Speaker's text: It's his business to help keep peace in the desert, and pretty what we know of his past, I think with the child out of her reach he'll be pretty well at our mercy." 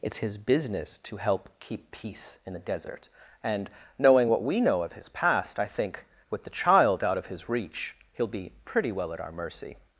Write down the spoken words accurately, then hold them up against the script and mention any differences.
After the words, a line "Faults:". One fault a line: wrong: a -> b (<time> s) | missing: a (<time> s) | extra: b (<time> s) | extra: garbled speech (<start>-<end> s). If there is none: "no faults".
It's his business to help keep peace in the desert, and knowing what we know of his past, I think with the child out of his reach he'll be pretty well at our mercy."
Faults:
wrong: pretty -> knowing (4.0 s)
wrong: her -> his (7.3 s)